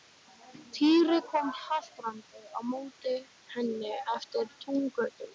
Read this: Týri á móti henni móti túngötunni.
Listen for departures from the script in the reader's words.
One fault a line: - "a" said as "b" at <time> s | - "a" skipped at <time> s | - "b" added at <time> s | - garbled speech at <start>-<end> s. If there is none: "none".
- "kom haltrandi" added at 1.3 s
- "móti" said as "eftir" at 4.2 s